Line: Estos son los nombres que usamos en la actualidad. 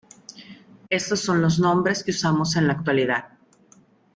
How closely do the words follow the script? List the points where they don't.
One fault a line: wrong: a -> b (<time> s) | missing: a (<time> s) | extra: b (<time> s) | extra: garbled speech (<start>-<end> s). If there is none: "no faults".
no faults